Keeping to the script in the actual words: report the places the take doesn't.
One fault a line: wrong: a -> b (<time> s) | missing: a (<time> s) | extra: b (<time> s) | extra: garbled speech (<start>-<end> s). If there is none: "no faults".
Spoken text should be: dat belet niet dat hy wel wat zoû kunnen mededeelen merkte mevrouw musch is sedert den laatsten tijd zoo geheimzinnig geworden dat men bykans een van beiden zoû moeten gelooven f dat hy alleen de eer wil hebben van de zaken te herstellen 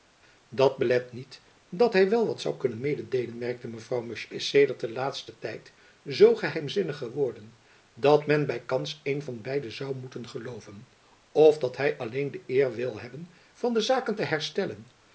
no faults